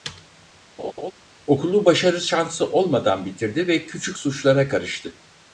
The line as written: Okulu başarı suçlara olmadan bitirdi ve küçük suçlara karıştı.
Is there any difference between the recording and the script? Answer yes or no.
yes